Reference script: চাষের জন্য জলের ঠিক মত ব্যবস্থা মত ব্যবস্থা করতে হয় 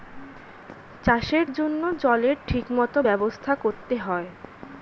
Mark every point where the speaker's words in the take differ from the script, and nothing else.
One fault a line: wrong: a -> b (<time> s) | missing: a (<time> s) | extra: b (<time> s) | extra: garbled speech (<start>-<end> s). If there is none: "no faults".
missing: মত ব্যবস্থা (3.5 s)